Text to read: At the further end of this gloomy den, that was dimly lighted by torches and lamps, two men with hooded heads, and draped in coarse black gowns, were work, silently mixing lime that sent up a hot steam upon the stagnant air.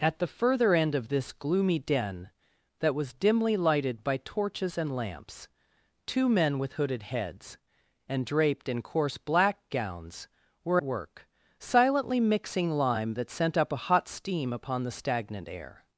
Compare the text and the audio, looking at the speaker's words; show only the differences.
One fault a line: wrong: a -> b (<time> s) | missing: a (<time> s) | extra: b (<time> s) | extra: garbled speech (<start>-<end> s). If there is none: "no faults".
no faults